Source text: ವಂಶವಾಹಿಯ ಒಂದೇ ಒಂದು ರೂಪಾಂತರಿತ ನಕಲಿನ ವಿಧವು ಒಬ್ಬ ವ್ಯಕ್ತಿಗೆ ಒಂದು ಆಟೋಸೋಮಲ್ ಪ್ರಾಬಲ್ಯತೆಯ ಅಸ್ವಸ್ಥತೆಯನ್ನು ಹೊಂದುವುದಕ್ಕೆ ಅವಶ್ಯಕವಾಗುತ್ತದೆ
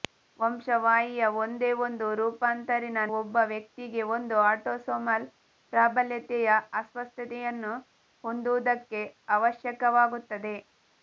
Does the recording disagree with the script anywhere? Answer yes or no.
yes